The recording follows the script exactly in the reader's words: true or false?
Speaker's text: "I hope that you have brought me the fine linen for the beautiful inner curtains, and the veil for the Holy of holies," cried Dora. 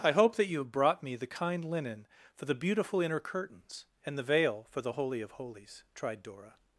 false